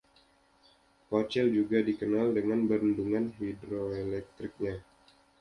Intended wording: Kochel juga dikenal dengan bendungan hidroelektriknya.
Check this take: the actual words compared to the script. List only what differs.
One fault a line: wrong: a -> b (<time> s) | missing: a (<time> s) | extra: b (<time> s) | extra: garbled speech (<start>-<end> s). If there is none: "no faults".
no faults